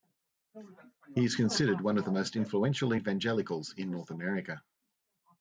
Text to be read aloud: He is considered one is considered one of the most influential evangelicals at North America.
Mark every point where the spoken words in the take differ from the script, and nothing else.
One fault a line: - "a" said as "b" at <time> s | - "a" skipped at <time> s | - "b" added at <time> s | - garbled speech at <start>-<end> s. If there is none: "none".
- "is considered one" skipped at 2.0 s
- "at" said as "in" at 3.8 s